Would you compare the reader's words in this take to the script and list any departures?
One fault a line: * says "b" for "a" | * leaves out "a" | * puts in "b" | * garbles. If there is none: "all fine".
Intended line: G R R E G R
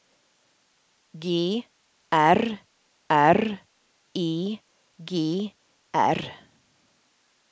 all fine